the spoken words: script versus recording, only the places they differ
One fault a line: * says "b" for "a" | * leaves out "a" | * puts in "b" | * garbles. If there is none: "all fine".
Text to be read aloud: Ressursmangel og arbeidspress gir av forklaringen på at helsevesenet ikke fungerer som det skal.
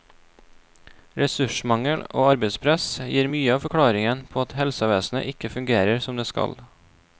* puts in "mye"